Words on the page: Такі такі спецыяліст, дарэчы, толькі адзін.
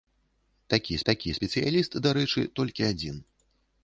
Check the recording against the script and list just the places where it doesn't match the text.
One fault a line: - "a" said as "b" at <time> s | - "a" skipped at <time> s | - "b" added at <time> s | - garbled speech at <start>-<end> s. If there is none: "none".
none